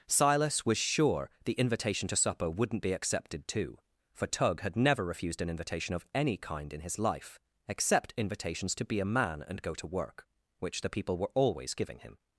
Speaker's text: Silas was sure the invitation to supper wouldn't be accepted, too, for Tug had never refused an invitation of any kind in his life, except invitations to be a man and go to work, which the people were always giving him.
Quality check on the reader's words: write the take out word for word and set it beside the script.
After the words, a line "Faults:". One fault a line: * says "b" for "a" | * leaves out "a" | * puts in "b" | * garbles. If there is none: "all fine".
Silas was sure the invitation to supper wouldn't be accepted, too, for Tug had never refused an invitation of any kind in his life, except invitations to be a man and go to work, which the people were always giving him.
Faults:
all fine